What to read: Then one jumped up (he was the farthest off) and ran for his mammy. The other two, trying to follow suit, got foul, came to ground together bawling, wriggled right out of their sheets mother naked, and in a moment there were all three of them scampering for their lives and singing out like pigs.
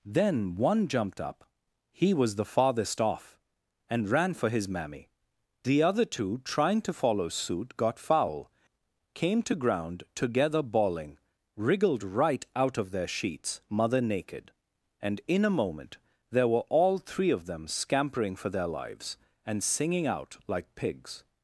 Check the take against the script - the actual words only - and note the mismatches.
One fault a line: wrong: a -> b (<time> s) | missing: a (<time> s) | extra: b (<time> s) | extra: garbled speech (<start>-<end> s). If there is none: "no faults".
no faults